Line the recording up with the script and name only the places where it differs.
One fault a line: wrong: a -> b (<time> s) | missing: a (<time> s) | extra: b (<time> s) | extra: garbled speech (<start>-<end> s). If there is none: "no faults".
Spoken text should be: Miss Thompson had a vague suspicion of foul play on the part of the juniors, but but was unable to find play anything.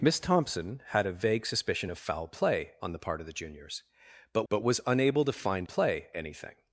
no faults